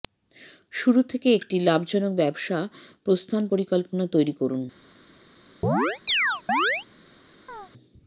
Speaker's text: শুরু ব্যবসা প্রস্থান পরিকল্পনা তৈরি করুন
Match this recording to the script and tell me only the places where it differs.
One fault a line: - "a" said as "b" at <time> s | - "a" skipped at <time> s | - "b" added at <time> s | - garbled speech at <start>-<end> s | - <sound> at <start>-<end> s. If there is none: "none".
- "থেকে একটি লাভজনক" added at 1.0 s
- chirp at 5.6-6.9 s
- chirp at 7.5-7.7 s